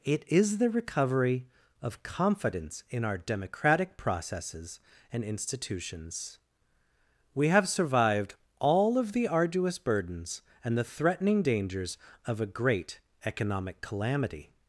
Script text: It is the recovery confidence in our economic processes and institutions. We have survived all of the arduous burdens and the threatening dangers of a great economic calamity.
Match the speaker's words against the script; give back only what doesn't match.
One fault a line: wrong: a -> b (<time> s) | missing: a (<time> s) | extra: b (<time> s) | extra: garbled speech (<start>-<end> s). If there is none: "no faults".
extra: of (1.8 s)
wrong: economic -> democratic (3.2 s)